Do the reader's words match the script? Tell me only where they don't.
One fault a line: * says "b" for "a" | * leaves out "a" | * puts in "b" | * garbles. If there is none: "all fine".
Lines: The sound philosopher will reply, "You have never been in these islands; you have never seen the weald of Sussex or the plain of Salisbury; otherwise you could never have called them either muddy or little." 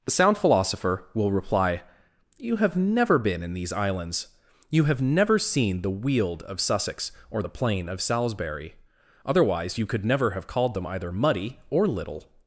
all fine